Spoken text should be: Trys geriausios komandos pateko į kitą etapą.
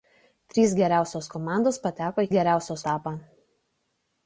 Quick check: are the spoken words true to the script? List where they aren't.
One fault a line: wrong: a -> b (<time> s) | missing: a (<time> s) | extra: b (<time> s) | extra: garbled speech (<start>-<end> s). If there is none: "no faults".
wrong: kitą -> geriausios (2.3 s)